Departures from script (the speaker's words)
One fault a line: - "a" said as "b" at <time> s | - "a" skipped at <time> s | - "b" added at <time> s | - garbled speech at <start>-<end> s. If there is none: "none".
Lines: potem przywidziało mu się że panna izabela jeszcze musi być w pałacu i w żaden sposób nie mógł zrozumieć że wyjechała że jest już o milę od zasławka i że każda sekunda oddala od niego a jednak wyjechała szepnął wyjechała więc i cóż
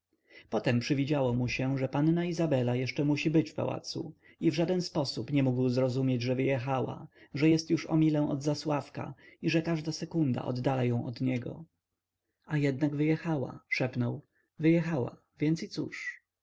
- "ją" added at 10.8 s